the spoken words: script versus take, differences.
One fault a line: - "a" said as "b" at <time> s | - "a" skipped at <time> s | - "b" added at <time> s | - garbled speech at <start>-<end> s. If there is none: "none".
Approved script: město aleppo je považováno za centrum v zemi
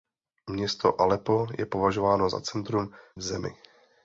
none